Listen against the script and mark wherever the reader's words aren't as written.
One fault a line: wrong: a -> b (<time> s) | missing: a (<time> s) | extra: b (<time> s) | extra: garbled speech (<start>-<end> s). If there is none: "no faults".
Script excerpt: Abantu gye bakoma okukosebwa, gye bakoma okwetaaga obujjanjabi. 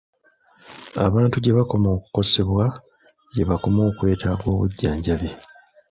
no faults